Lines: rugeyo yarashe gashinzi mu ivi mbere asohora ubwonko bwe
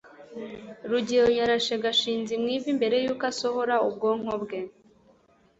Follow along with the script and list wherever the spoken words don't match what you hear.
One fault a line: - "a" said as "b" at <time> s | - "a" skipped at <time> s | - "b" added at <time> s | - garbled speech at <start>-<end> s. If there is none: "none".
- "yuko" added at 3.0 s